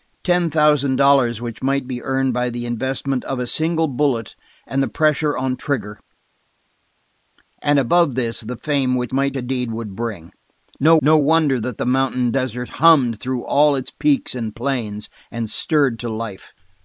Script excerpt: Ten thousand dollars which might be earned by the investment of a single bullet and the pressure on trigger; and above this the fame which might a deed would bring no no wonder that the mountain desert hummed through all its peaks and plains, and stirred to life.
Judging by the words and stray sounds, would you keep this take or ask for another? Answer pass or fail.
pass